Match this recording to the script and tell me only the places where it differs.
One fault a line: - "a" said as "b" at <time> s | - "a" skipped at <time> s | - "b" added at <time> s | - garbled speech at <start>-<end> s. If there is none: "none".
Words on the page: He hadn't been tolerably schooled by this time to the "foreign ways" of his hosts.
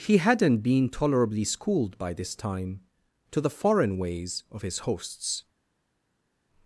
none